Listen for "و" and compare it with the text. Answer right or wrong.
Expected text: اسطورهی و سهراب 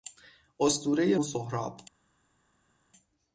right